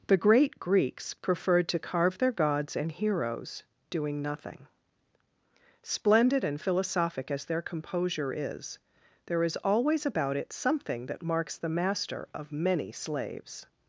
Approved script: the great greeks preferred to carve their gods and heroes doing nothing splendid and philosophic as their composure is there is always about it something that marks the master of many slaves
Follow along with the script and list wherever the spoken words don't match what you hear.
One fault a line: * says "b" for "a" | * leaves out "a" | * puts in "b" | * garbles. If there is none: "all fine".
all fine